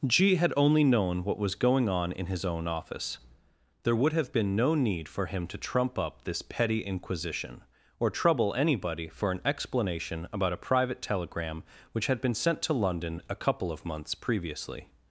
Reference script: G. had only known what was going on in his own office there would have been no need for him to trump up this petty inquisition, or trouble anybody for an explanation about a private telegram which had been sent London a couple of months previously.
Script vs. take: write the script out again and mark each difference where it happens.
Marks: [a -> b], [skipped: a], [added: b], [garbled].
G. had only known what was going on in his own office there would have been no need for him to trump up this petty inquisition, or trouble anybody for an explanation about a private telegram which had been sent [added: to] London a couple of months previously.